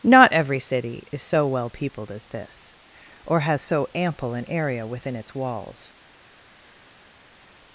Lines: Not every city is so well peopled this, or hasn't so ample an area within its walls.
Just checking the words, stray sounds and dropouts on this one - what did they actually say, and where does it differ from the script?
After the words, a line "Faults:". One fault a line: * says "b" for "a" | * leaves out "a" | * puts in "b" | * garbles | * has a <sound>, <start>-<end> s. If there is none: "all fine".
Not every city is so well peopled as this, or has so ample an area within its walls.
Faults:
* puts in "as"
* says "has" for "hasn't"